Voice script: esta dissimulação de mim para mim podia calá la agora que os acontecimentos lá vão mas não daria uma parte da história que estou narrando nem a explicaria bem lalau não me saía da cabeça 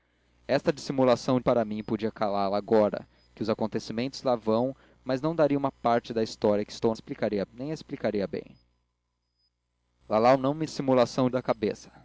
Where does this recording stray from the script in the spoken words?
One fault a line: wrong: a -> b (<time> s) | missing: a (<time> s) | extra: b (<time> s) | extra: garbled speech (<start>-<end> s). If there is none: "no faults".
missing: de mim (1.4 s)
wrong: narrando -> explicaria (6.9 s)
wrong: saía -> dissimulação (10.6 s)